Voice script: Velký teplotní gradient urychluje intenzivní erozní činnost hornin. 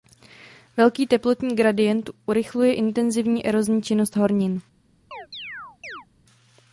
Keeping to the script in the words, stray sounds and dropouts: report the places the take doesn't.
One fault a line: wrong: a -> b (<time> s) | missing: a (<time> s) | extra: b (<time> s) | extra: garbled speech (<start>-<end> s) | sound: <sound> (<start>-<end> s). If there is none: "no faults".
sound: chirp (5.1-6.1 s)